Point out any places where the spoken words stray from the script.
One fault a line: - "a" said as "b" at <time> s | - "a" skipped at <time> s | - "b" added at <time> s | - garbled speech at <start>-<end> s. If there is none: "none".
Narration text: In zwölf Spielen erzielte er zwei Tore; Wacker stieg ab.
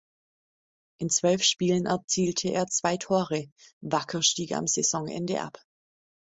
- "am Saisonende" added at 4.5 s